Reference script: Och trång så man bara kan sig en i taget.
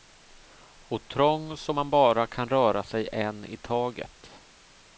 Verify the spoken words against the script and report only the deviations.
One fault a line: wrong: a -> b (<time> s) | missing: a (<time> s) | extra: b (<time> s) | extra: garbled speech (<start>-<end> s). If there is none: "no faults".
extra: röra (2.5 s)